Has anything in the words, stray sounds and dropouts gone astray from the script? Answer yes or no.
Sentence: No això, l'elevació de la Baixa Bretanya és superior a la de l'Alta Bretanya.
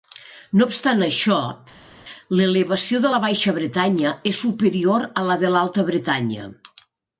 yes